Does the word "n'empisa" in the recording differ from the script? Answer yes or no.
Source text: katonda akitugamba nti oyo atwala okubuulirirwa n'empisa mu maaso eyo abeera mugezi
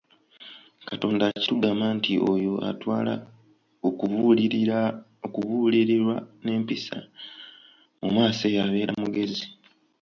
no